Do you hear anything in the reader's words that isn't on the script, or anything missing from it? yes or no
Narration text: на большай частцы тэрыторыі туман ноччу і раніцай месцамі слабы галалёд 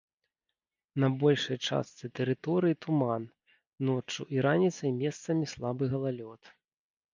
no